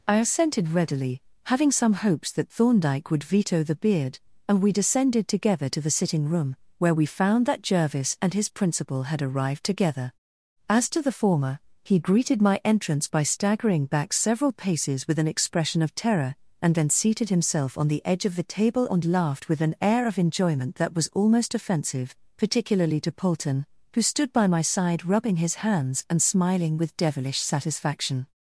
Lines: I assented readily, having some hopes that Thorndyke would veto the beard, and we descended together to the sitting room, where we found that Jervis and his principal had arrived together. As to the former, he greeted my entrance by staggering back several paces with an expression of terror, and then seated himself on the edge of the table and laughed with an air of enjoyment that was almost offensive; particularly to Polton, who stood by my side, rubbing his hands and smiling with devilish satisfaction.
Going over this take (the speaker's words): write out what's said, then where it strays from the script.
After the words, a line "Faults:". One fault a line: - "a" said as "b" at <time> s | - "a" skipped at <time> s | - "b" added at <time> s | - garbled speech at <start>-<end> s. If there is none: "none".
I assented readily, having some hopes that Thorndyke would veto the beard, and we descended together to the sitting room, where we found that Jervis and his principal had arrived together. As to the former, he greeted my entrance by staggering back several paces with an expression of terror, and then seated himself on the edge of the table and laughed with an air of enjoyment that was almost offensive; particularly to Polton, who stood by my side, rubbing his hands and smiling with devilish satisfaction.
Faults:
none